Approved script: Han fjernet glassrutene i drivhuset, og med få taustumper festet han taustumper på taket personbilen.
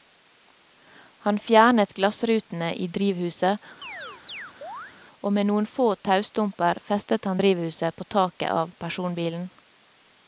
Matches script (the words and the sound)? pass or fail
fail